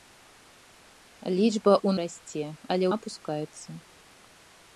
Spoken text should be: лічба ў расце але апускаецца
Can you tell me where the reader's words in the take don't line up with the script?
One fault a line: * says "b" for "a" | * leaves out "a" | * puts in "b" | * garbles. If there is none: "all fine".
all fine